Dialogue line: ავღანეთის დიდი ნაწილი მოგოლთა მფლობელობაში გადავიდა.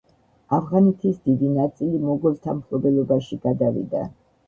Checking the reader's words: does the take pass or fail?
pass